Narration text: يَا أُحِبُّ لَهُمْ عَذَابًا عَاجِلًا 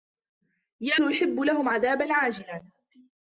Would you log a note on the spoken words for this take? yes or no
no